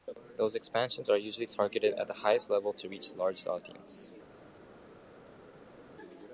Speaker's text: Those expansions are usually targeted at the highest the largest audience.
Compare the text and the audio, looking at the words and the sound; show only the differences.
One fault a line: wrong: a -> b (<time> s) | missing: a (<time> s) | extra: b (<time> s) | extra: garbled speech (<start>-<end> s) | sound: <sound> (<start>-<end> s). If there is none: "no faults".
extra: level to reach (2.5 s)